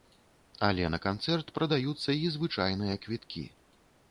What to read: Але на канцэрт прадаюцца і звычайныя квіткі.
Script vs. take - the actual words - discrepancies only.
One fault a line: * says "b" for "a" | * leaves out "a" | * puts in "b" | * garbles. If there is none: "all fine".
all fine